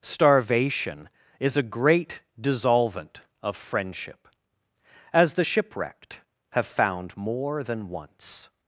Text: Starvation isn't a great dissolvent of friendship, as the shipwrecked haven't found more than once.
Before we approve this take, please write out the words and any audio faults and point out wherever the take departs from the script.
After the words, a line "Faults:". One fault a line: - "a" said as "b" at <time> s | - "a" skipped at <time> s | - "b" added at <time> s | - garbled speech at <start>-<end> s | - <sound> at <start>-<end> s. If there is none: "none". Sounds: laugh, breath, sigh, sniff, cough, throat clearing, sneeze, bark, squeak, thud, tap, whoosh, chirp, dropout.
Starvation is a great dissolvent of friendship, as the shipwrecked have found more than once.
Faults:
- "isn't" said as "is" at 1.4 s
- "haven't" said as "have" at 6.5 s